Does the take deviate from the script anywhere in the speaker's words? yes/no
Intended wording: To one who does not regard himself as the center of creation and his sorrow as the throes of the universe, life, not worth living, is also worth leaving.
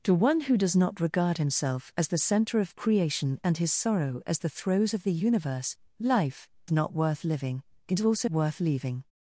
no